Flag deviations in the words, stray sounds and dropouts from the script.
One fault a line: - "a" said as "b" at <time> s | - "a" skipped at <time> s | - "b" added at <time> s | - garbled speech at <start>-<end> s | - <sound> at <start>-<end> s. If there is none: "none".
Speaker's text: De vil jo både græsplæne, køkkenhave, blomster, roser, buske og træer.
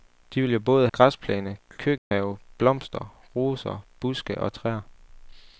- dropout at 2.0-2.1 s